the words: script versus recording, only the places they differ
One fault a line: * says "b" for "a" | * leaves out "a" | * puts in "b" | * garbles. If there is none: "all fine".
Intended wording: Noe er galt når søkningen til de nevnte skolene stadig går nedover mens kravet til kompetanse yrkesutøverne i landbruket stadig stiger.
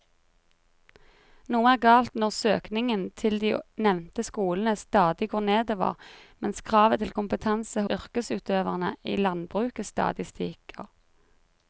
all fine